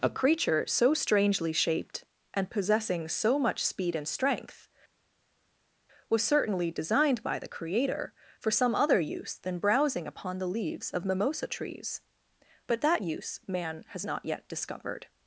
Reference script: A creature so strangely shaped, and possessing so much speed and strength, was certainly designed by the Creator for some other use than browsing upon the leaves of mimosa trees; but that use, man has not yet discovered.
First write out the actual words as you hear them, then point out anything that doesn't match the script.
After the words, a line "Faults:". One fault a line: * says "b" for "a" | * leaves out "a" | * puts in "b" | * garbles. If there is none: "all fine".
A creature so strangely shaped, and possessing so much speed and strength, was certainly designed by the Creator for some other use than browsing upon the leaves of mimosa trees; but that use, man has not yet discovered.
Faults:
all fine